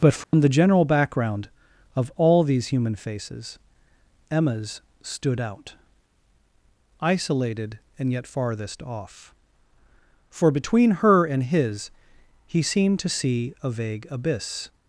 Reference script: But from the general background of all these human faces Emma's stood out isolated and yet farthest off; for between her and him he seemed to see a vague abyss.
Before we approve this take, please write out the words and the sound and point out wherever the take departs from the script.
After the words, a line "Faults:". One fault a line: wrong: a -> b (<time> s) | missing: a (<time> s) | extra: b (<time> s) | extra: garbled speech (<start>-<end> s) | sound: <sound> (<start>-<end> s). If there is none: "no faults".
But from the general background of all these human faces Emma's stood out isolated and yet farthest off; for between her and his he seemed to see a vague abyss.
Faults:
sound: dropout (0.2-0.3 s)
wrong: him -> his (11.4 s)